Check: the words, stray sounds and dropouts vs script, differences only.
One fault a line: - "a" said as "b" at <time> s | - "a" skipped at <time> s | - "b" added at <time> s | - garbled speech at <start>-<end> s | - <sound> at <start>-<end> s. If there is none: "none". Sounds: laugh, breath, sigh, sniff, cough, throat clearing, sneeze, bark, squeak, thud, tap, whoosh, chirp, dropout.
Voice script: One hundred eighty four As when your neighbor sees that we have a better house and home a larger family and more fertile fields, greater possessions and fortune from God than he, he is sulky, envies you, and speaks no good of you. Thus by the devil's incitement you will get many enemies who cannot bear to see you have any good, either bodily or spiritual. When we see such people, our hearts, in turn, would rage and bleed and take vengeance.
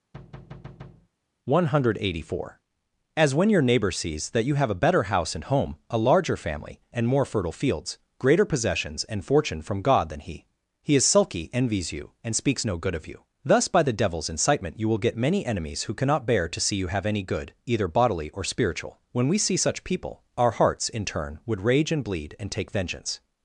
- thud at 0.1-1.1 s
- "we" said as "you" at 4.4 s